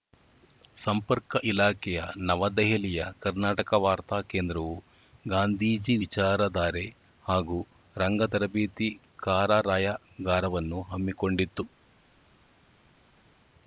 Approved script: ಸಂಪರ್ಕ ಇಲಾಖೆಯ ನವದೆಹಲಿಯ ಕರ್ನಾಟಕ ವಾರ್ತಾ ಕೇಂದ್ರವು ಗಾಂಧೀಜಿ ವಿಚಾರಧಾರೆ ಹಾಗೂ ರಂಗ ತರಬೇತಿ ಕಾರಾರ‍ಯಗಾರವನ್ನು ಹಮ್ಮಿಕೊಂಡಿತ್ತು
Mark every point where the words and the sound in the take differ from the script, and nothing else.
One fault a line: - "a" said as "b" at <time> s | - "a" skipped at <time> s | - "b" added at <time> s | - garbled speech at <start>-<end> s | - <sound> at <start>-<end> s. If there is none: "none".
none